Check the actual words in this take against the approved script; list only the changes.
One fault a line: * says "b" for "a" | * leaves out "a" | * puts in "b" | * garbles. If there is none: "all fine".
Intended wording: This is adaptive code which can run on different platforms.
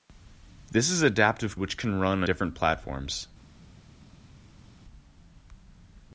* leaves out "code"
* leaves out "on"